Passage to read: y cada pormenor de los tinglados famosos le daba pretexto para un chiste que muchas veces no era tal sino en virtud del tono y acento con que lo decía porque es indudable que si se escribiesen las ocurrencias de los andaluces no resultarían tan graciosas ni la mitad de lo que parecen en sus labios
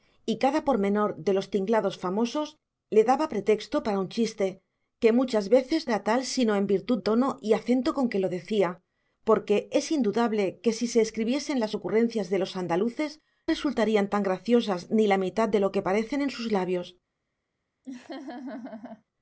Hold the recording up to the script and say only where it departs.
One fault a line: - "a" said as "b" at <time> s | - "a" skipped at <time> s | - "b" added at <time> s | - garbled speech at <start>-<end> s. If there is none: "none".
- "no" skipped at 5.9 s
- "del" skipped at 7.0 s
- "no" skipped at 13.2 s